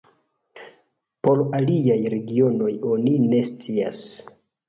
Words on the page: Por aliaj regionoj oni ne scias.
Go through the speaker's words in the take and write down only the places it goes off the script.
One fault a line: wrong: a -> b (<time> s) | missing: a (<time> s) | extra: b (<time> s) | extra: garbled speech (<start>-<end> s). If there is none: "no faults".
no faults